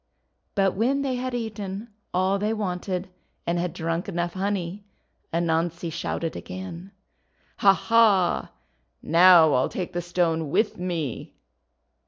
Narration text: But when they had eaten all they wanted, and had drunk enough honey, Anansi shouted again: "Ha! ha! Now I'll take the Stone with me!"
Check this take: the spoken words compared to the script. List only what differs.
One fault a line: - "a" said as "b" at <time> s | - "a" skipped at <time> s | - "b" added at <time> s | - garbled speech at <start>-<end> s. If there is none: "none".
none